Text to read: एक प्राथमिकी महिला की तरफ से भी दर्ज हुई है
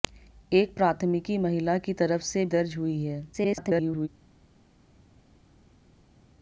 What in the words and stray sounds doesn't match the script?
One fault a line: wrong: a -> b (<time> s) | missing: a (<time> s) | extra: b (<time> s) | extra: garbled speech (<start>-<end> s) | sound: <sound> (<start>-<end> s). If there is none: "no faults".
missing: भी (2.5 s)
extra: garbled speech (3.3-4.1 s)